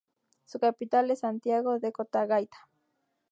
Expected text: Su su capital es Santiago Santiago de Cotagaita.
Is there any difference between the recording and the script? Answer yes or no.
yes